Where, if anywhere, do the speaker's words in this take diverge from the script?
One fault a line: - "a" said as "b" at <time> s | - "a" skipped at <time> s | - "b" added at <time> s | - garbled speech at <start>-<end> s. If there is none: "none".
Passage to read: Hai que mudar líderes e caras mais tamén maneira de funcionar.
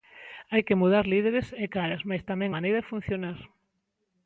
none